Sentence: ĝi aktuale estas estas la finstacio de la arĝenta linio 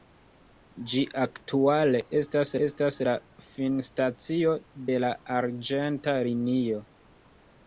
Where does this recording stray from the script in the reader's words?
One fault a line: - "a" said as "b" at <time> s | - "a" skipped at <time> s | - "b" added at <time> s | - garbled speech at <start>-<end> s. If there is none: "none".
none